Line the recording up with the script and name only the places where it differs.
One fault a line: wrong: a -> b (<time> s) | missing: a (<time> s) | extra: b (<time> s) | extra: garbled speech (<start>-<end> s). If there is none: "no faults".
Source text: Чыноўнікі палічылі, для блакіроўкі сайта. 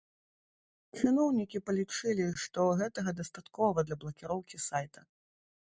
extra: што гэтага дастаткова (2.5 s)